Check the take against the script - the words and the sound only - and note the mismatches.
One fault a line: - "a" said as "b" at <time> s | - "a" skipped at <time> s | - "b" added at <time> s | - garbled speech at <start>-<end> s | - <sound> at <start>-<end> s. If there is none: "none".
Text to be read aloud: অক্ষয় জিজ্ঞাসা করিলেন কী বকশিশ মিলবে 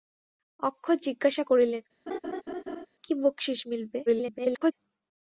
- laugh at 2.1-2.9 s
- garbled speech at 4.1-4.7 s